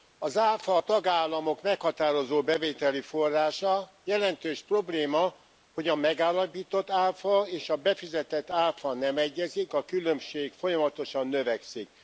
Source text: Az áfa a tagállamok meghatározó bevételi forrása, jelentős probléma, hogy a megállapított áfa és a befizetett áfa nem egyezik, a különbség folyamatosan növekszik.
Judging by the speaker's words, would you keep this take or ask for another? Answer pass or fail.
pass